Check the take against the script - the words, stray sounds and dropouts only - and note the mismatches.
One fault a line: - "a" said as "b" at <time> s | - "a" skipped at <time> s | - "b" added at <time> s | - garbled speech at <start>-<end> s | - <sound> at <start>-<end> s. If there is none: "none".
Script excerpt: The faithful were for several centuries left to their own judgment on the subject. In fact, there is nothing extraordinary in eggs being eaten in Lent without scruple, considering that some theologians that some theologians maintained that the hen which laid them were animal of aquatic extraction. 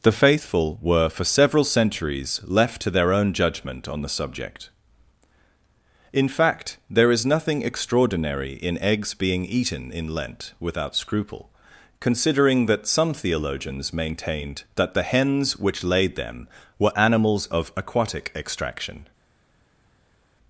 - "that some theologians" skipped at 13.9 s
- "hen" said as "hens" at 15.0 s
- "animal" said as "animals" at 17.0 s